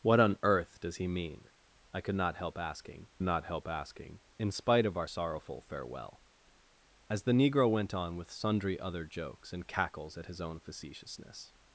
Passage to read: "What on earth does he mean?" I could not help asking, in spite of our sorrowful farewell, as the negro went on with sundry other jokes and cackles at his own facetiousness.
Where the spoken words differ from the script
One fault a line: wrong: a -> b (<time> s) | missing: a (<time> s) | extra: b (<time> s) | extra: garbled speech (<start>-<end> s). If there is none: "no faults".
extra: not help asking (3.2 s)